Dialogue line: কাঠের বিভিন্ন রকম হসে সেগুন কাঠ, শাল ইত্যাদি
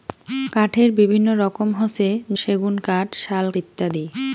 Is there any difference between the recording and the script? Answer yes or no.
no